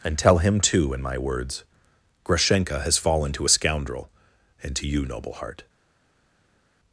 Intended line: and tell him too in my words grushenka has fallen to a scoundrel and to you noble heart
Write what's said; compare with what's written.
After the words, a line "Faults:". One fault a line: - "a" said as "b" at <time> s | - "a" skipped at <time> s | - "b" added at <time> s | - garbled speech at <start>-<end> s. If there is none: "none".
and tell him too in my words grushenka has fallen to a scoundrel and to you noble heart
Faults:
none